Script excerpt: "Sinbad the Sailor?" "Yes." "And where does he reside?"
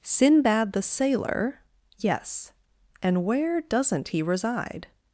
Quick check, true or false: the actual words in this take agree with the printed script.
false